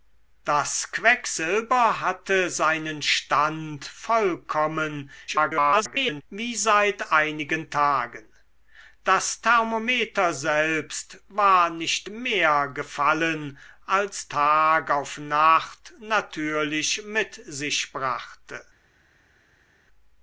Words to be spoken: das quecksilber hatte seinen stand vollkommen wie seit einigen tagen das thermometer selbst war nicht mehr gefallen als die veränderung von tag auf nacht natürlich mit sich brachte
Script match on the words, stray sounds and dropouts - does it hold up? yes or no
no